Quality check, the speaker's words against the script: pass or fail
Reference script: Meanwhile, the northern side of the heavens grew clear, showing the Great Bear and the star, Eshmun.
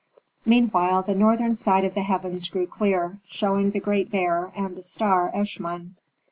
pass